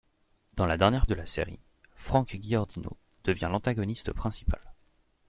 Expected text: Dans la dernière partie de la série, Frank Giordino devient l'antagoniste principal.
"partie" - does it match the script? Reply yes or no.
no